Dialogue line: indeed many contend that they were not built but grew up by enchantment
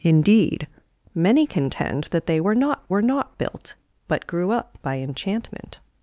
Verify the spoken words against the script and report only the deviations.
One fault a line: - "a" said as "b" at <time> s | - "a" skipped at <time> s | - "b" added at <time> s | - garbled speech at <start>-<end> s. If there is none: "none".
- "were not" added at 2.9 s